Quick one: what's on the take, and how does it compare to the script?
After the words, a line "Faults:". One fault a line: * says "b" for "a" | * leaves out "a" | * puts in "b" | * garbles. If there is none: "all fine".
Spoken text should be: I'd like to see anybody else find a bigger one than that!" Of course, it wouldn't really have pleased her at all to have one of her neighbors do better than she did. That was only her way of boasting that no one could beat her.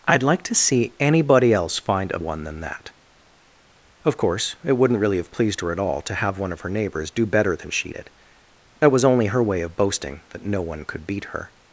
I'd like to see anybody else find a one than that!" Of course, it wouldn't really have pleased her at all to have one of her neighbors do better than she did. That was only her way of boasting that no one could beat her.
Faults:
* leaves out "bigger"